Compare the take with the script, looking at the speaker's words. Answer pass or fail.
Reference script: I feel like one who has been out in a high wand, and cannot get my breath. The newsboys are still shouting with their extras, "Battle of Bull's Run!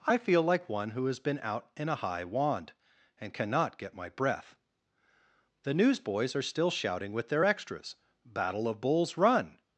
pass